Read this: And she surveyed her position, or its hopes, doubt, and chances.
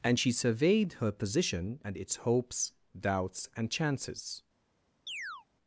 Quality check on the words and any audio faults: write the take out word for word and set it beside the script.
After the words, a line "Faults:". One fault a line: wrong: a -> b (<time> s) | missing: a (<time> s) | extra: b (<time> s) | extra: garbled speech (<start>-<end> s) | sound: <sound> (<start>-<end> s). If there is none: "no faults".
And she surveyed her position, and its hopes, doubts, and chances.
Faults:
wrong: or -> and (1.8 s)
wrong: doubt -> doubts (3.0 s)
sound: chirp (5.1-5.5 s)